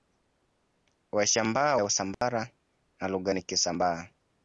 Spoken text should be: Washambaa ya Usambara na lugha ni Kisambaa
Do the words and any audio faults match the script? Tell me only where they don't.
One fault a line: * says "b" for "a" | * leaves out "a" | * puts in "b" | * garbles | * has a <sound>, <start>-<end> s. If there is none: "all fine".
* has a dropout, 2.1-2.2 s